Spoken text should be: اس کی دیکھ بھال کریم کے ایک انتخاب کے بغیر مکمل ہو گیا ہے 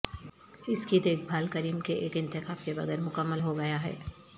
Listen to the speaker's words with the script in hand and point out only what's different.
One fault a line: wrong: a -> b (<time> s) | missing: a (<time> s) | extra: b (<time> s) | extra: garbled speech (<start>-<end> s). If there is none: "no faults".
no faults